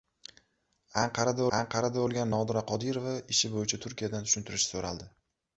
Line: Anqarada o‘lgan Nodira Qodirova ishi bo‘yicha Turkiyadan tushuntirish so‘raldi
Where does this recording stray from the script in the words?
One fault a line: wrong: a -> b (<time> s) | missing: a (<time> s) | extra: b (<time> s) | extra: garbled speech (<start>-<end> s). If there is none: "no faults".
extra: anqarada (1.6 s)